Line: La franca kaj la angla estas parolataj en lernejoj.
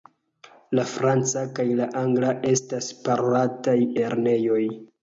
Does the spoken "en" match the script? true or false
false